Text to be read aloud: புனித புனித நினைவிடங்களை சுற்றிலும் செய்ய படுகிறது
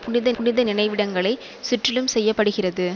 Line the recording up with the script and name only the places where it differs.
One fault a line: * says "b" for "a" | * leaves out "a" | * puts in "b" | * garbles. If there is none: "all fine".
all fine